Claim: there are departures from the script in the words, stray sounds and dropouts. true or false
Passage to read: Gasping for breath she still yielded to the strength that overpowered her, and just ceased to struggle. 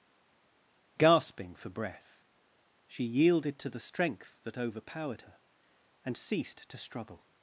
true